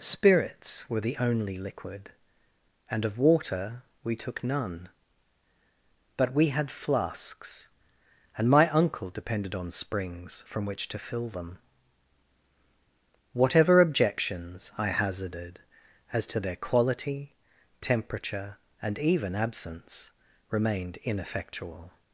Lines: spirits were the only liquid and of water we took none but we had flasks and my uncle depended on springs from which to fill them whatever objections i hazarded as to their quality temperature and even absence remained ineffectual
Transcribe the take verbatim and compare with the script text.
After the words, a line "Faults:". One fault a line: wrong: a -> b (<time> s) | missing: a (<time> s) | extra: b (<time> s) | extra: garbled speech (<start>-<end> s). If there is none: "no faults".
spirits were the only liquid and of water we took none but we had flasks and my uncle depended on springs from which to fill them whatever objections i hazarded as to their quality temperature and even absence remained ineffectual
Faults:
no faults